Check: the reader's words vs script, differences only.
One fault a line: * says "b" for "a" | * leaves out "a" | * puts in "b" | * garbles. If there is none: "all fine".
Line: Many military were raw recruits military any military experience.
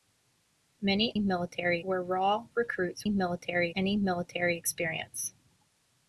all fine